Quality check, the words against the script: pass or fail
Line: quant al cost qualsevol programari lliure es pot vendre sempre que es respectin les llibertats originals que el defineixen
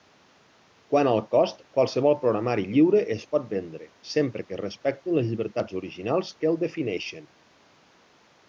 pass